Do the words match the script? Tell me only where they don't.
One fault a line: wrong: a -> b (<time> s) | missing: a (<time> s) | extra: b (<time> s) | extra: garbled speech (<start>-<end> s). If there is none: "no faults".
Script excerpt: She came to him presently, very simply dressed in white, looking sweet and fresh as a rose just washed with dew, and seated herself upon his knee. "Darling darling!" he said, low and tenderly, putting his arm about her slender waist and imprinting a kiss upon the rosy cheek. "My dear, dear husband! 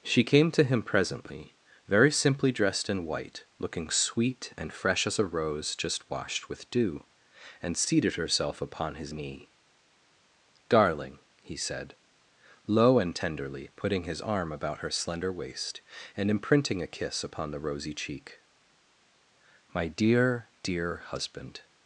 missing: darling (11.2 s)